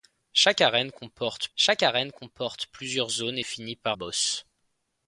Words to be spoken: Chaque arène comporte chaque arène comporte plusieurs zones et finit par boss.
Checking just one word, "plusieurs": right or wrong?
right